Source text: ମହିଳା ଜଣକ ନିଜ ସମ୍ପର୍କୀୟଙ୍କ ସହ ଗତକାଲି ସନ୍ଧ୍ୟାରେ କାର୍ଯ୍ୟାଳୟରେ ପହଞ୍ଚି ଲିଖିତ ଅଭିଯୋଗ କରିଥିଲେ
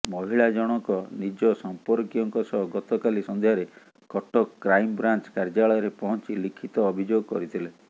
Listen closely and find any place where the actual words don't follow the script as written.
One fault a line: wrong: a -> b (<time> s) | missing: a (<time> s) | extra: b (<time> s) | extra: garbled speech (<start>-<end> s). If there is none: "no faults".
extra: କଟକ କ୍ରାଇମବ୍ରାଞ୍ଚ (4.1 s)